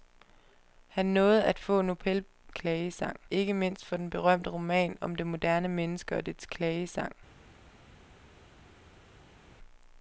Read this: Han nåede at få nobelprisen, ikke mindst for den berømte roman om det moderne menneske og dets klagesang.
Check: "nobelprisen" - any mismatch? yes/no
yes